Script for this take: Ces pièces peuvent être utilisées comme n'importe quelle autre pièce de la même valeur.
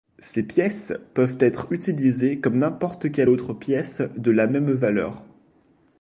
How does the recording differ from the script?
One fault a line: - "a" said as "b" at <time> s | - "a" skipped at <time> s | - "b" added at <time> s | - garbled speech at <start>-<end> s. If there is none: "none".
none